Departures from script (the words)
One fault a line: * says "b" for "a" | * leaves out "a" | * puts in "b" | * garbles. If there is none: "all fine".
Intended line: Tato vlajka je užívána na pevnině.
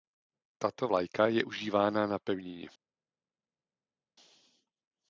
all fine